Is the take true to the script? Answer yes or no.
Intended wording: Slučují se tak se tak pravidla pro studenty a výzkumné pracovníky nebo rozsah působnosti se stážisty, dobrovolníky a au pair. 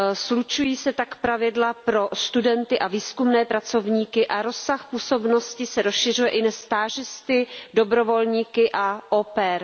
no